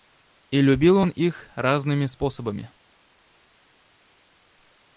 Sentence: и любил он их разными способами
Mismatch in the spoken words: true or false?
false